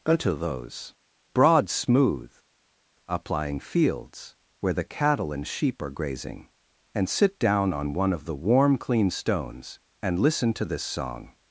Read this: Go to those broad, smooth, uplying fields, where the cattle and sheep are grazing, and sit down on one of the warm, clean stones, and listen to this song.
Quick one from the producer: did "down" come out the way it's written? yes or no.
yes